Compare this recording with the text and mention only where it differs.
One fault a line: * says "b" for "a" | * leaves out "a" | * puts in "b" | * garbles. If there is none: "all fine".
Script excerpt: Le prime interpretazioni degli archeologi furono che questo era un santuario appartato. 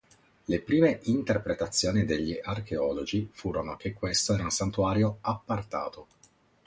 all fine